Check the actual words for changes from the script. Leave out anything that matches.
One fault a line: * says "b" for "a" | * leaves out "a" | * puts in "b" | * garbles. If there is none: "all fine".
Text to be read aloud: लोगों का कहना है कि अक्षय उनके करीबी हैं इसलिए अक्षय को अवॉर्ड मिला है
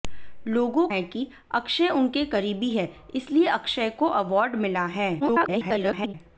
* leaves out "का कहना"
* garbles